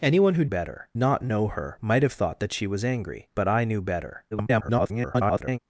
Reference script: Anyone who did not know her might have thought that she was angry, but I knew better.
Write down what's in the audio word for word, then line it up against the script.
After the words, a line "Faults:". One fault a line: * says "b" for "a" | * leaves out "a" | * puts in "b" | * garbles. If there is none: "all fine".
Anyone who better not know her might have thought that she was angry, but I knew better. [garbled]
Faults:
* says "better" for "did"
* garbles